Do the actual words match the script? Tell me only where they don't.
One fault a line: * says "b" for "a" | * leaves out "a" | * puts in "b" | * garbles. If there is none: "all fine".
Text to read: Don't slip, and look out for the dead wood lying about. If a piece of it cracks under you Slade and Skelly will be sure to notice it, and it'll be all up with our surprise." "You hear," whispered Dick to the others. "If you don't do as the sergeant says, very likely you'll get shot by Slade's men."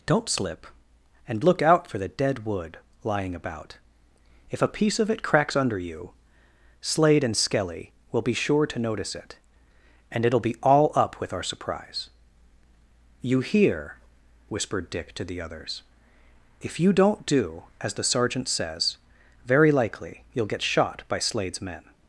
all fine